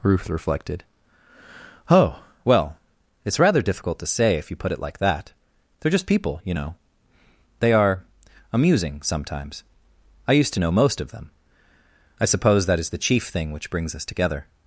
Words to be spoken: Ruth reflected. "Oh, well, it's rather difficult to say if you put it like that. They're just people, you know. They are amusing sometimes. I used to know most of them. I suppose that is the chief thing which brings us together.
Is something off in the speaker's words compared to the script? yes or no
no